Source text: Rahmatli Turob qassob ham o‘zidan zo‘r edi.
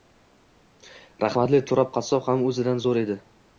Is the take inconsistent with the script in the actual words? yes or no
no